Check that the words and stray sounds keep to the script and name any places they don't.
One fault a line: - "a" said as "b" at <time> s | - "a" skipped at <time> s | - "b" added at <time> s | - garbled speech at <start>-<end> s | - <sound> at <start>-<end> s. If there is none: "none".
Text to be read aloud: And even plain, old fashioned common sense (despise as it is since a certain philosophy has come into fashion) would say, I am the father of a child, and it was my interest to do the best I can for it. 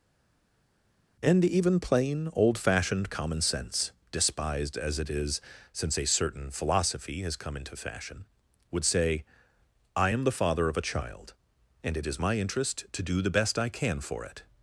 - "despise" said as "despised" at 4.1 s
- "was" said as "is" at 12.1 s